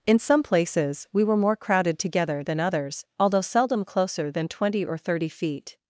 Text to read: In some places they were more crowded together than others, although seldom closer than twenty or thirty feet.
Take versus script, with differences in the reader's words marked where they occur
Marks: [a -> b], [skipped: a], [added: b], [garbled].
In some places [they -> we] were more crowded together than others, although seldom closer than twenty or thirty feet.